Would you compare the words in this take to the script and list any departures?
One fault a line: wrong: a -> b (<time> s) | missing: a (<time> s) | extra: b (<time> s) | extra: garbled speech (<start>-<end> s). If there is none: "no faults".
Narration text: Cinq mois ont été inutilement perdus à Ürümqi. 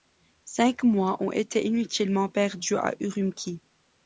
no faults